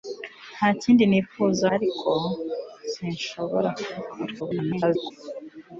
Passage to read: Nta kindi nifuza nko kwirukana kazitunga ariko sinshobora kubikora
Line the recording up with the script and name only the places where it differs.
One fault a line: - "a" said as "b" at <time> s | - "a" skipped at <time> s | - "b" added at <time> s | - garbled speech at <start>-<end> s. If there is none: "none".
- "nko kwirukana kazitunga" skipped at 1.6 s
- garbled speech at 4.4-5.1 s